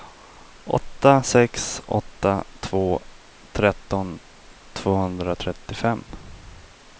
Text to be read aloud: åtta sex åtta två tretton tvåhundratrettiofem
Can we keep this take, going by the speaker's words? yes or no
yes